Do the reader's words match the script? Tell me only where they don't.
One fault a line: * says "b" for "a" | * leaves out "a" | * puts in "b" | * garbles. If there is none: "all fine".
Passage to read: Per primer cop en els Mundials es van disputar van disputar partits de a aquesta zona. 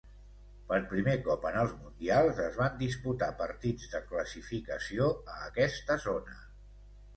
* leaves out "van disputar"
* puts in "classificació"